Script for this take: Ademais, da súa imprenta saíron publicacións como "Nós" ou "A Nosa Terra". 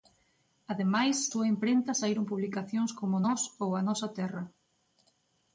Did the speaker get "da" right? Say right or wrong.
wrong